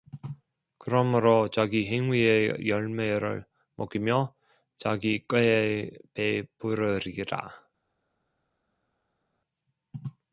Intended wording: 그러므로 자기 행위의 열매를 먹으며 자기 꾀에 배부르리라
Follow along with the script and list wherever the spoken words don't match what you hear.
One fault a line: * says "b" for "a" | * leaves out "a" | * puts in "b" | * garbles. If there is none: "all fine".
all fine